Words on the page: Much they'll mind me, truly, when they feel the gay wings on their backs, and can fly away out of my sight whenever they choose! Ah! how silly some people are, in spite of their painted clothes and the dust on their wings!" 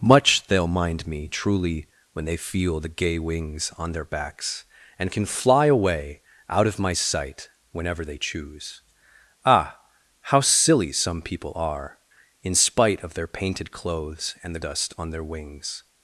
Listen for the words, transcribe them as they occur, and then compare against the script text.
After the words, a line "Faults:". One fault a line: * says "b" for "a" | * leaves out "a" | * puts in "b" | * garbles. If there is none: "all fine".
Much they'll mind me, truly, when they feel the gay wings on their backs, and can fly away out of my sight whenever they choose! Ah! how silly some people are, in spite of their painted clothes and the dust on their wings!"
Faults:
all fine